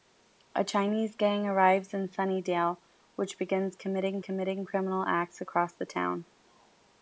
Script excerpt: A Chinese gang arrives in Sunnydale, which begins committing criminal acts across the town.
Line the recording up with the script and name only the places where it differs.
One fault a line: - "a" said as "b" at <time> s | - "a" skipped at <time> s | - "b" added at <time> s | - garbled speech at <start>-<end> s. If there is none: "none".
- "committing" added at 4.2 s